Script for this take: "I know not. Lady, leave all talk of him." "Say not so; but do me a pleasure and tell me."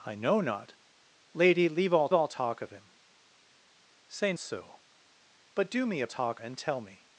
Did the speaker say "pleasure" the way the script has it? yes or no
no